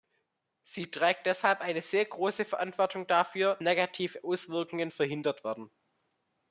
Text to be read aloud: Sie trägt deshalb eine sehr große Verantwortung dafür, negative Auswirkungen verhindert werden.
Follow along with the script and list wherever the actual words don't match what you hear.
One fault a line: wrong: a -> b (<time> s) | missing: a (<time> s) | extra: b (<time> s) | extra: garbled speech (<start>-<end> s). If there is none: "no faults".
no faults